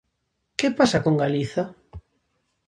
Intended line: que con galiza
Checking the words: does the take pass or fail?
fail